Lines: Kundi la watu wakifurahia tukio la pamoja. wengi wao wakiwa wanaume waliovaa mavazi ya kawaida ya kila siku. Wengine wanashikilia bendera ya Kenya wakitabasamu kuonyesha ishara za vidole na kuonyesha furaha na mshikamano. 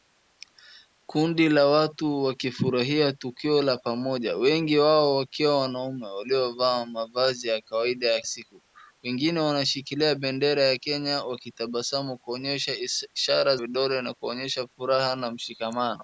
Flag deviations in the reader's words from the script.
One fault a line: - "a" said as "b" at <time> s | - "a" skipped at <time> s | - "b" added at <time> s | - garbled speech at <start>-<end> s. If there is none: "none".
- "kila" skipped at 8.2 s
- "za" skipped at 13.6 s